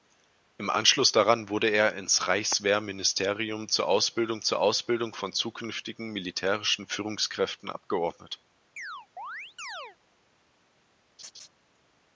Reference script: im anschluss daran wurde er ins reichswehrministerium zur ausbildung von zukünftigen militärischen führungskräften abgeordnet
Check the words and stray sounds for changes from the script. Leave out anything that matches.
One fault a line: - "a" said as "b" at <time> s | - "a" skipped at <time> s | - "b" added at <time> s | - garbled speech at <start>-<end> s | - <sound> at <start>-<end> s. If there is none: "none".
- "zur ausbildung" added at 4.4 s
- chirp at 8.8-10.0 s
- laugh at 11.2-11.5 s